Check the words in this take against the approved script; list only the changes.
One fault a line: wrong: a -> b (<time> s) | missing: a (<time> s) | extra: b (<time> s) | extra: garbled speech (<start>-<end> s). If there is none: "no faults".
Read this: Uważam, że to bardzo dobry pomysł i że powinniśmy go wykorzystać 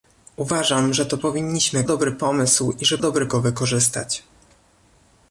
wrong: bardzo -> powinniśmy (1.2 s)
wrong: powinniśmy -> dobry (3.0 s)